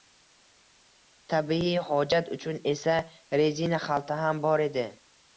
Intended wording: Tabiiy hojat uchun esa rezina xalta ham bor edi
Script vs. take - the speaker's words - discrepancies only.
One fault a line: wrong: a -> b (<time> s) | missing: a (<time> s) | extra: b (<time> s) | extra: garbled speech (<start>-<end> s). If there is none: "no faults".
no faults